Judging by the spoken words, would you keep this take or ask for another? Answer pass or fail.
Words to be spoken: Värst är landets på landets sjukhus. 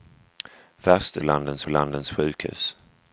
pass